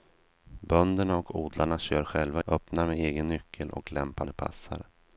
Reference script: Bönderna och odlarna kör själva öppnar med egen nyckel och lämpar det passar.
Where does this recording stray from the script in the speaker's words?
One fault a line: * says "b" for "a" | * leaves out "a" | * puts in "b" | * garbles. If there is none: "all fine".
all fine